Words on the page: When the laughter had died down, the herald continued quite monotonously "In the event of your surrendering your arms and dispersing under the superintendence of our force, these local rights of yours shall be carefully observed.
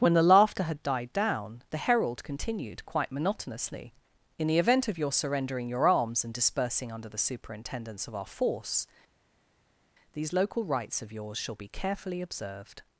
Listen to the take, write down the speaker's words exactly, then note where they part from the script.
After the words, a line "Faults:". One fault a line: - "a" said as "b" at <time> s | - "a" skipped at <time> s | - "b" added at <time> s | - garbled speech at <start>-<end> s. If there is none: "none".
When the laughter had died down, the herald continued quite monotonously "In the event of your surrendering your arms and dispersing under the superintendence of our force, these local rights of yours shall be carefully observed.
Faults:
none